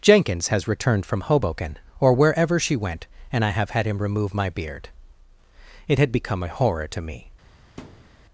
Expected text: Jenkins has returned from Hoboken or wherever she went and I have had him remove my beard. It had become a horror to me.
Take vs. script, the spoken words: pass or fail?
pass